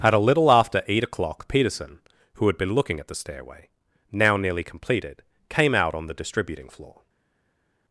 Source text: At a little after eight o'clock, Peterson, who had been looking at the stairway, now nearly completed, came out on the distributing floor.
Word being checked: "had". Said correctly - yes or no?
yes